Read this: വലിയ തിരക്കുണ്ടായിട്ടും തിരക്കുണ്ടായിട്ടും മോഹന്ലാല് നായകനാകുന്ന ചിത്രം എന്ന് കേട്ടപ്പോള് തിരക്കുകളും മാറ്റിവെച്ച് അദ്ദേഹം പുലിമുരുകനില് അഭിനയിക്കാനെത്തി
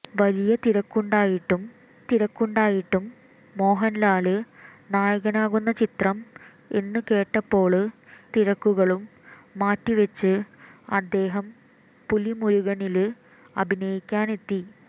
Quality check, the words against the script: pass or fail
pass